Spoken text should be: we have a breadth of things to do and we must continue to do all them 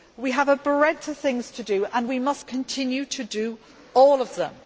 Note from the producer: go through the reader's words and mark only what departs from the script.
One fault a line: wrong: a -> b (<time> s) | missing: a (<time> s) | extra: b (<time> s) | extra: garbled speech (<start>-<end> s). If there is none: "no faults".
extra: of (4.2 s)